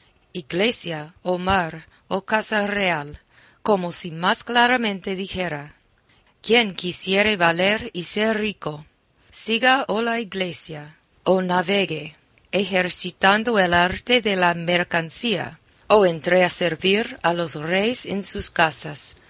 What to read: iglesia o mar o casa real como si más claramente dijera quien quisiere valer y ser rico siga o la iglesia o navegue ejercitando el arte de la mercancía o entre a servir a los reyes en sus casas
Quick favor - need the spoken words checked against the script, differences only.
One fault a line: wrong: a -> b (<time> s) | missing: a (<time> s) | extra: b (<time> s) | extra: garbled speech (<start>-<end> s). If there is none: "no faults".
no faults